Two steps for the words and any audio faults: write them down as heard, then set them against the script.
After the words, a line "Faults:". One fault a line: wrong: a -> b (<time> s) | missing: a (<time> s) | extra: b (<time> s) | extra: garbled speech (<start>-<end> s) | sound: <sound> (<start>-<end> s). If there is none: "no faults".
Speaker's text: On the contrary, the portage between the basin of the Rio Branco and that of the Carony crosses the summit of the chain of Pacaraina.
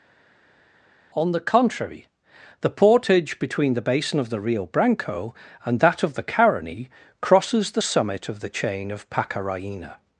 On the contrary, the portage between the basin of the Rio Branco and that of the Carony crosses the summit of the chain of Pacaraina.
Faults:
no faults